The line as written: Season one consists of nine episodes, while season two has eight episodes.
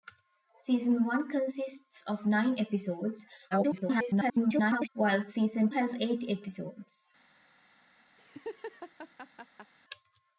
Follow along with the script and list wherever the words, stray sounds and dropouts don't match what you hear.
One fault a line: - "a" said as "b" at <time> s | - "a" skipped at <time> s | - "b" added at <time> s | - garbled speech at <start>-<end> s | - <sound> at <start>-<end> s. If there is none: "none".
- garbled speech at 3.5-4.9 s
- "two" skipped at 5.7 s
- laugh at 8.2-9.7 s